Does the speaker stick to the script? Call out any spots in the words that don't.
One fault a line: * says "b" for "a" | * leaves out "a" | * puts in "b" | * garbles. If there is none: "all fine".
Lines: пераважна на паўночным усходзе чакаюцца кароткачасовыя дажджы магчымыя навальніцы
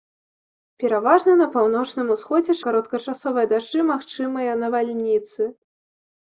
* leaves out "чакаюцца"